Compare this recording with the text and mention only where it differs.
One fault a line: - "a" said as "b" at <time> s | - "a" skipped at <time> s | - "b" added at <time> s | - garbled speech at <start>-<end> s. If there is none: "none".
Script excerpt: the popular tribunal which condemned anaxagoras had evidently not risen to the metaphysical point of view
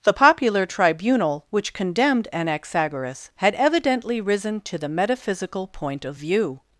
- "not" skipped at 4.2 s